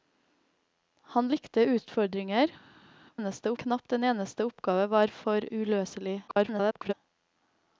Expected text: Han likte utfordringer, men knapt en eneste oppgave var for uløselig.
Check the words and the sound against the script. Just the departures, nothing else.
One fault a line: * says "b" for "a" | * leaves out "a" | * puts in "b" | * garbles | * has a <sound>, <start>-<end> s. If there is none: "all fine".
* says "eneste" for "men"
* garbles